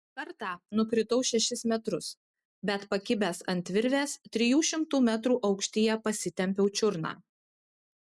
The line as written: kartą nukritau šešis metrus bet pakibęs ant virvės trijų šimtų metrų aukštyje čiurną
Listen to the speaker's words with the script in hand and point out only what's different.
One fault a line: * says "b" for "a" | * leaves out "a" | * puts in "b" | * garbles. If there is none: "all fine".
* puts in "pasitempiau"